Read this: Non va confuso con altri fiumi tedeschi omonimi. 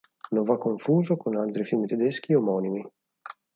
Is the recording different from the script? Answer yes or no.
no